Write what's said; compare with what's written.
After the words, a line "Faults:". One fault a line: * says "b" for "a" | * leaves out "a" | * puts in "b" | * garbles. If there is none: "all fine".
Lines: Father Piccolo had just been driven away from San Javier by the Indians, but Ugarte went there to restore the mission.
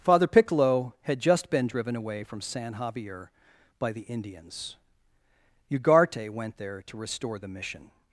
Father Piccolo had just been driven away from San Javier by the Indians, Ugarte went there to restore the mission.
Faults:
* leaves out "but"